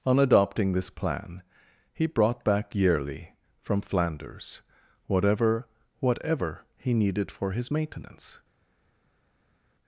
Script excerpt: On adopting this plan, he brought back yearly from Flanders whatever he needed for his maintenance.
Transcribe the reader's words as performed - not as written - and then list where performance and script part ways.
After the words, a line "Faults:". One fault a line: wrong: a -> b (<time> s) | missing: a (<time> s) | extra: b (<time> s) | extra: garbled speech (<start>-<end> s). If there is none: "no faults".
On adopting this plan, he brought back yearly from Flanders whatever whatever he needed for his maintenance.
Faults:
extra: whatever (6.0 s)